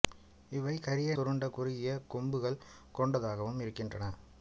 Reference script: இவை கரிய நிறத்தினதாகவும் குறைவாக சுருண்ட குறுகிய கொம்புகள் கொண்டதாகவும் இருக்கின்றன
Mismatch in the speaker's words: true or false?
true